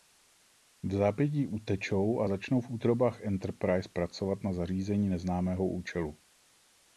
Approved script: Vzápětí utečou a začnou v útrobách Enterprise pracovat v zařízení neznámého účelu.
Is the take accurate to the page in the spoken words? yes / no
no